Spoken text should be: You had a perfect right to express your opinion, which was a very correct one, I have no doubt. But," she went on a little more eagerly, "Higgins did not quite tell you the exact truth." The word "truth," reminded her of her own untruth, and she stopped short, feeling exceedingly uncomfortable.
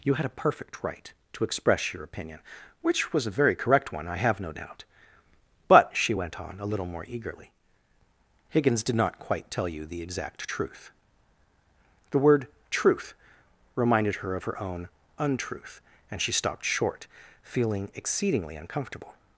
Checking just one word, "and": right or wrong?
right